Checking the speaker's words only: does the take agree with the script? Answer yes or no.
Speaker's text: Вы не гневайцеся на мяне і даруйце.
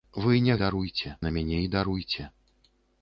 no